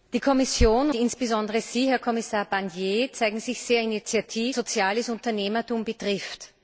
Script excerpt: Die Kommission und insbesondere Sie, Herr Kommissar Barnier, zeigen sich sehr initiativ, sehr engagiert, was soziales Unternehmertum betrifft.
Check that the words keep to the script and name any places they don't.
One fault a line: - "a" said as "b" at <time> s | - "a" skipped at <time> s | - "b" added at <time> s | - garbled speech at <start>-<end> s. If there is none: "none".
- "und" skipped at 0.9 s
- "sehr engagiert was" skipped at 4.6 s